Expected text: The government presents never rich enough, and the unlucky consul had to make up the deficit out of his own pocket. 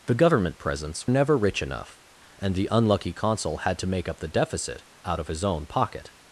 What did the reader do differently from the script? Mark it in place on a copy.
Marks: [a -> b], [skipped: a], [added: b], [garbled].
The government presents never rich enough, and the unlucky consul had to make up the deficit out of his own pocket.